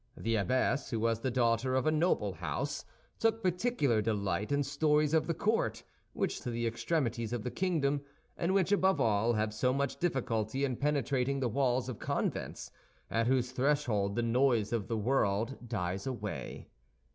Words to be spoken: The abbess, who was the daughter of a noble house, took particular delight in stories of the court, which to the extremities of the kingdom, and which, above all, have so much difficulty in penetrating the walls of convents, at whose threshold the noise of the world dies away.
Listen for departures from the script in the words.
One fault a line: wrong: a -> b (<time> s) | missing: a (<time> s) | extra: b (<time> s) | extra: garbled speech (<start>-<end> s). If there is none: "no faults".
no faults